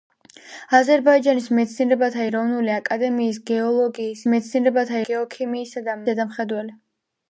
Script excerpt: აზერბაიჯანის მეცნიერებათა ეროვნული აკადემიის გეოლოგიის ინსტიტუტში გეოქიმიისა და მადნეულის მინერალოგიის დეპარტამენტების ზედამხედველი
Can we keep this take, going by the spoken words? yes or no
no